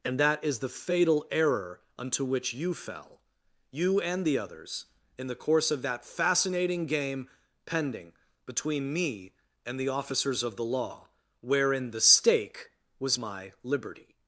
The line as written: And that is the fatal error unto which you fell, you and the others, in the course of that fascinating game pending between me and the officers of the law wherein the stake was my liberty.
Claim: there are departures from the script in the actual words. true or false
false